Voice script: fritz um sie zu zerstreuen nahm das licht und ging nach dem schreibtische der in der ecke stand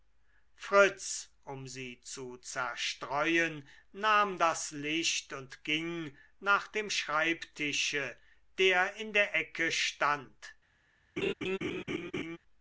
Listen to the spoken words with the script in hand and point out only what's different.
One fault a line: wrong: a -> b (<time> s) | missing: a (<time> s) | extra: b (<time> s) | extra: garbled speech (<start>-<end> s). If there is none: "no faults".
no faults